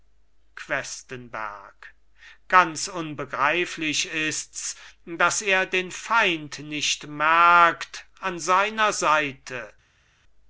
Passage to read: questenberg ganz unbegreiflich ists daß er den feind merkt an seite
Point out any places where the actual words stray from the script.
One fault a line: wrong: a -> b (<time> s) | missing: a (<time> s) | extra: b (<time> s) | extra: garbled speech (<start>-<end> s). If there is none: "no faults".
extra: nicht (6.6 s)
extra: seiner (8.4 s)